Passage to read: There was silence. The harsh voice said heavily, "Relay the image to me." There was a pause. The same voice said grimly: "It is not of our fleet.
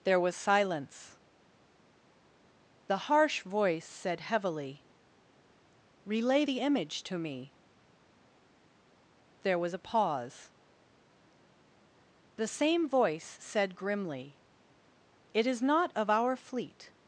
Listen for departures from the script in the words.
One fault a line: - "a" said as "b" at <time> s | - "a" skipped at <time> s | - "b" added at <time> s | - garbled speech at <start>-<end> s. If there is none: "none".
none